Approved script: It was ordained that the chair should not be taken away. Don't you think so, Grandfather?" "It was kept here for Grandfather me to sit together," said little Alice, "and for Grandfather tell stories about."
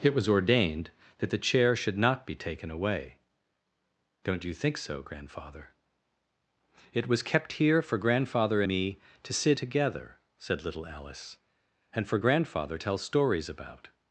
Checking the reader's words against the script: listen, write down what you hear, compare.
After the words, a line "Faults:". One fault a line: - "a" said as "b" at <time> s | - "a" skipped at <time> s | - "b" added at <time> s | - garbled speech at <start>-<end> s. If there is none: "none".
It was ordained that the chair should not be taken away. Don't you think so, Grandfather?" "It was kept here for Grandfather me to sit together," said little Alice, "and for Grandfather tell stories about."
Faults:
none